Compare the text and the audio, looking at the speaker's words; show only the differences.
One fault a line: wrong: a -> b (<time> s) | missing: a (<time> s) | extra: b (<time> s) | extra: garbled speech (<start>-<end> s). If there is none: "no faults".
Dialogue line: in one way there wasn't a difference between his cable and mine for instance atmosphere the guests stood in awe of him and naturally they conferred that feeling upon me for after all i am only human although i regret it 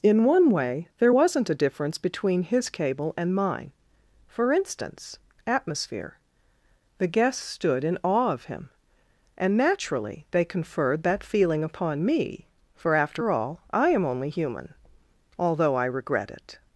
no faults